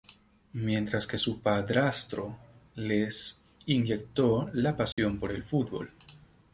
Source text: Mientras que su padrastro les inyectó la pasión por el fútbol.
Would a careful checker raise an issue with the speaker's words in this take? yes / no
no